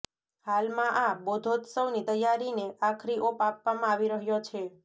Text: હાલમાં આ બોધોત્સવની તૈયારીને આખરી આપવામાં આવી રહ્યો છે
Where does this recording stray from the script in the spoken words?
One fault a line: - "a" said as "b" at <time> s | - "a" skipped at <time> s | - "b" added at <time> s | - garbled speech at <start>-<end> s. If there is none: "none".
- "ઓપ" added at 3.3 s